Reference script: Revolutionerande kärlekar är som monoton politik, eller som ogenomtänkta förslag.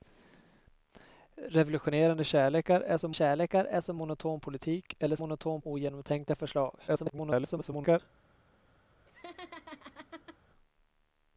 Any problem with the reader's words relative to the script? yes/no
yes